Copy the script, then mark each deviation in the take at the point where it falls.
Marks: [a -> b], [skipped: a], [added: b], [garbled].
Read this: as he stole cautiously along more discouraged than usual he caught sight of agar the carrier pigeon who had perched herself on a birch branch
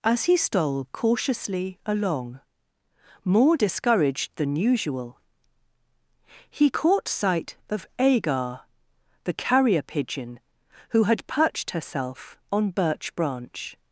as he stole cautiously along more discouraged than usual he caught sight of agar the carrier pigeon who had perched herself on [skipped: a] birch branch